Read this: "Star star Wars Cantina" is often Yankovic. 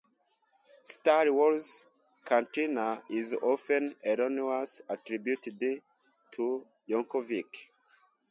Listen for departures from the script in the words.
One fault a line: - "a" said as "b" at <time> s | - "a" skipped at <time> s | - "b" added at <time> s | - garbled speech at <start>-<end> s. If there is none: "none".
- "star" skipped at 1.3 s
- "erroneously attributed to" added at 4.0 s